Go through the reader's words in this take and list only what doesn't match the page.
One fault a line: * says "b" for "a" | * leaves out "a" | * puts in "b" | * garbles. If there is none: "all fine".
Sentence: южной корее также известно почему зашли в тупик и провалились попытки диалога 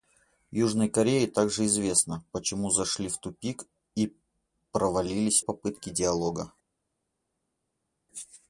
all fine